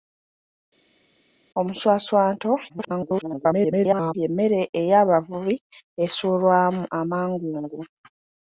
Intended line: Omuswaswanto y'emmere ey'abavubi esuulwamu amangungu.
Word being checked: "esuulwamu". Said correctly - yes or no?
yes